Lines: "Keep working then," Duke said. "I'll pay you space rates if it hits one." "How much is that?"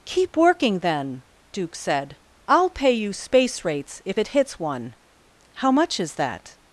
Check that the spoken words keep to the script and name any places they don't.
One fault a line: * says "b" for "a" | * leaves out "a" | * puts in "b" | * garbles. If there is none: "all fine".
all fine